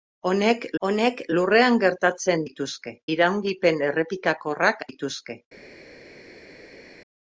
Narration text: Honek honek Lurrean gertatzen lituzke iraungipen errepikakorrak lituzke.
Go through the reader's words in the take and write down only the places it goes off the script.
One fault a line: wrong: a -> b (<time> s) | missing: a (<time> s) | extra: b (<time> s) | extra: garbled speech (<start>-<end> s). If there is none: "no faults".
no faults